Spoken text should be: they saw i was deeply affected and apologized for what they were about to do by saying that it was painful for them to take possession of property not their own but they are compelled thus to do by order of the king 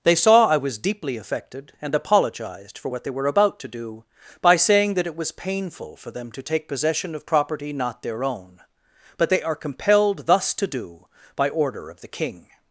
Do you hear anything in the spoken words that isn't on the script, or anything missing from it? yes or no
no